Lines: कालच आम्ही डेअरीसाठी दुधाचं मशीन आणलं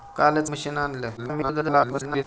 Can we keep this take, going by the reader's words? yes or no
no